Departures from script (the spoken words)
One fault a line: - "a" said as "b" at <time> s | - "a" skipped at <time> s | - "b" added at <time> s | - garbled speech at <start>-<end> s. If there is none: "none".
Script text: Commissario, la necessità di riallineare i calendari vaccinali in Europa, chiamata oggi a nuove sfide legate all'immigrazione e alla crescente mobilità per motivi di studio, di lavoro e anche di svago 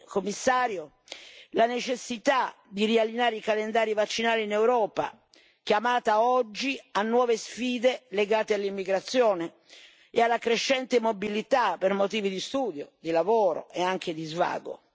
none